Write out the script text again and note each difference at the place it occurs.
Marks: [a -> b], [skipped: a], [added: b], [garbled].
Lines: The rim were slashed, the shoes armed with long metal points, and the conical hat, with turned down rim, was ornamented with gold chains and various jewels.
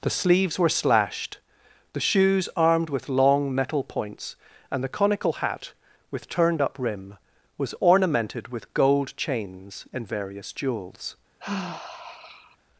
The [rim -> sleeves] were slashed, the shoes armed with long metal points, and the conical hat, with turned [down -> up] rim, was ornamented with gold chains and various jewels.